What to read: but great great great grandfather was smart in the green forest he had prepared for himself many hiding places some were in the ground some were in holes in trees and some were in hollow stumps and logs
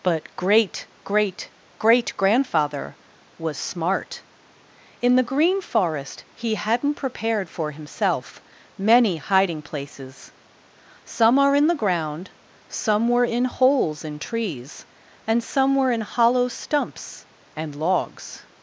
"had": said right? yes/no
no